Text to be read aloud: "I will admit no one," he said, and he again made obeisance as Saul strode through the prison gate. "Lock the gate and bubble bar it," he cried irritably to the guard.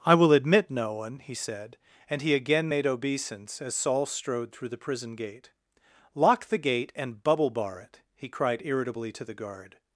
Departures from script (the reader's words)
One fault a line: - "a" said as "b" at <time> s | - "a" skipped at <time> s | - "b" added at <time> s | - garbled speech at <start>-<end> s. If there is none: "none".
none